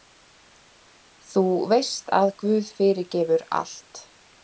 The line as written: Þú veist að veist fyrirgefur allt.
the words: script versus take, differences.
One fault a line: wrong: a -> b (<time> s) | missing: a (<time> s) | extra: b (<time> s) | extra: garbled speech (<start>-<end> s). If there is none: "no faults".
wrong: veist -> guð (2.5 s)